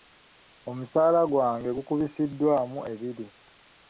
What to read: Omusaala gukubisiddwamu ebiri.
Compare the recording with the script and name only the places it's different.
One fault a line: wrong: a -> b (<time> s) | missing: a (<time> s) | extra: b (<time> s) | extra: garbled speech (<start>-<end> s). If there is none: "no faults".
extra: gwange (1.3 s)